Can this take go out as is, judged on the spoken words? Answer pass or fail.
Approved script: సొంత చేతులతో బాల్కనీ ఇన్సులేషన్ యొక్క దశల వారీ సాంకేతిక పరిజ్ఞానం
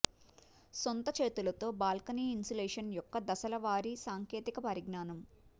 pass